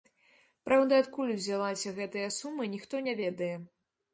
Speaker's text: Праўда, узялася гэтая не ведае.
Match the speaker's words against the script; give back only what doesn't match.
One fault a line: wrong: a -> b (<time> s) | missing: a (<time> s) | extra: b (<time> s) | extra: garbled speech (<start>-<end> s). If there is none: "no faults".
extra: адкуль (1.0 s)
extra: сума ніхто (2.4 s)